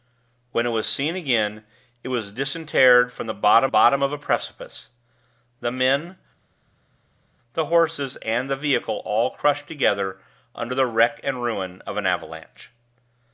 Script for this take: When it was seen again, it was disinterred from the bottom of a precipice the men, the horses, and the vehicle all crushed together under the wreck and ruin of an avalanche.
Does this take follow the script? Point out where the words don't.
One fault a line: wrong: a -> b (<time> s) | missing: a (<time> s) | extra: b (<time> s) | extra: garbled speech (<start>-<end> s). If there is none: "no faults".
extra: bottom (3.7 s)